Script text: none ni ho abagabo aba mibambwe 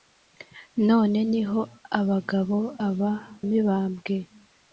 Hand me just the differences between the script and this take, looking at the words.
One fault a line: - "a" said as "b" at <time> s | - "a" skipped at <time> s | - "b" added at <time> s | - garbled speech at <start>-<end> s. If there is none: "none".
none